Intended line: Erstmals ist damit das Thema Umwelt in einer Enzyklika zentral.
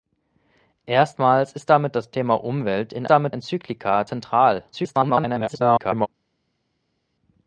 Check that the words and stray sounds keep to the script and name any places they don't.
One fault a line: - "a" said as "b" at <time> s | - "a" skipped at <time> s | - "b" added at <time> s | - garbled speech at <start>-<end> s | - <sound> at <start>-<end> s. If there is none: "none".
- "einer" said as "damit" at 3.1 s
- garbled speech at 4.7-6.1 s